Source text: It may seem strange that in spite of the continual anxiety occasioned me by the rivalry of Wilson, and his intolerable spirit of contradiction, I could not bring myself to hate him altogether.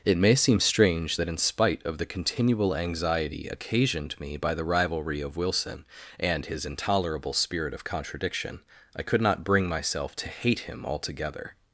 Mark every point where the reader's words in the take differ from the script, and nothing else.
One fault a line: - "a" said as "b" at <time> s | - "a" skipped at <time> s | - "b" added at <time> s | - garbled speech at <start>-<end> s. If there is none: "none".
none